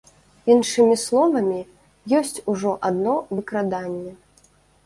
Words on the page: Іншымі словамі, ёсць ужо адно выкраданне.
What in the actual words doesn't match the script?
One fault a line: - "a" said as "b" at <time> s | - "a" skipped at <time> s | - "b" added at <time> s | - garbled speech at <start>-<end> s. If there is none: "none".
none